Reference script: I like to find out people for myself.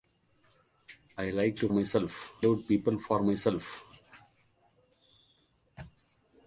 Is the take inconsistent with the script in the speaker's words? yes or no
yes